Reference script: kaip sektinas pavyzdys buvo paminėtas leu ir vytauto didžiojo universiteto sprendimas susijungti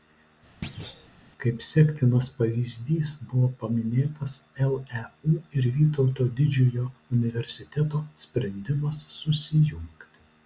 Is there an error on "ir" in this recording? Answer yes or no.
no